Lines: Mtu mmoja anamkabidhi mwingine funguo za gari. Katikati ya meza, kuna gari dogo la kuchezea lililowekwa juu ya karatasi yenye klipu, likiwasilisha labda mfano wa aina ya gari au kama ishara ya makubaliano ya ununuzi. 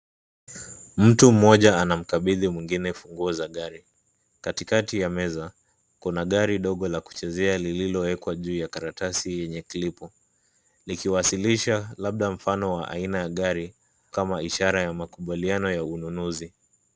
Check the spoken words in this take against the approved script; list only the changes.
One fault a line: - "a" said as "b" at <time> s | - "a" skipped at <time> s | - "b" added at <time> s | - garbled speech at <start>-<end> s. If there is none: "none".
- "au" skipped at 13.7 s